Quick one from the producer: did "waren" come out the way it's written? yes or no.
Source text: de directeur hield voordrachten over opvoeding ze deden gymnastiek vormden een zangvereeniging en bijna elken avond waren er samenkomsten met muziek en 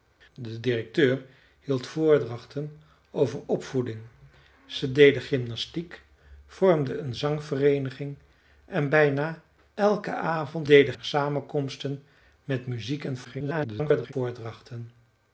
no